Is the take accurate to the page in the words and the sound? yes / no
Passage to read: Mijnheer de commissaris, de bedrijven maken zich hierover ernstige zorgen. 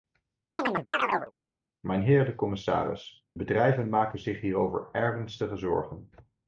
no